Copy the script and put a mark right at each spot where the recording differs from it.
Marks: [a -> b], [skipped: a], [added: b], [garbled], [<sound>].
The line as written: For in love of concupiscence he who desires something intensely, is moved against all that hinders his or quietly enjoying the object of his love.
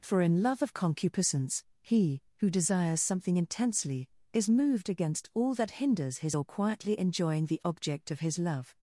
For in love of concupiscence he who desires something intensely, is moved against all that hinders his or quietly enjoying the object of his love.